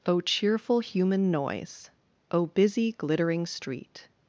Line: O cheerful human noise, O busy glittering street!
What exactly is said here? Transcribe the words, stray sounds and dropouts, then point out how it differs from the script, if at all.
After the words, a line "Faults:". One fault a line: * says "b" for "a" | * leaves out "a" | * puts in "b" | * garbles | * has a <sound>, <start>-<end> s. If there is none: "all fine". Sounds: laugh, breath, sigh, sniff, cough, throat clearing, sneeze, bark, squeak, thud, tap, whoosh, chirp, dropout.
O cheerful human noise, O busy glittering street!
Faults:
all fine